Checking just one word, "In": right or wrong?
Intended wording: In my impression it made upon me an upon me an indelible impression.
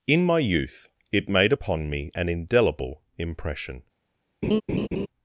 right